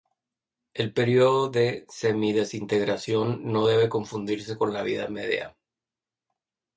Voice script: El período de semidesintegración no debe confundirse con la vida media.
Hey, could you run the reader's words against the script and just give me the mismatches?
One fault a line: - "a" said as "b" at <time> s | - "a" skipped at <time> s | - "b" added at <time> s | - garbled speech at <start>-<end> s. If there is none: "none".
none